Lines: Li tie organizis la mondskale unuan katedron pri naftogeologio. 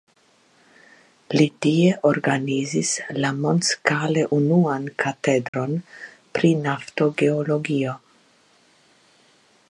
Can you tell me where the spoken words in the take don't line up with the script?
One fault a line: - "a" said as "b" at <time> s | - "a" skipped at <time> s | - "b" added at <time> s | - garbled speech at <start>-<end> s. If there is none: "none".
none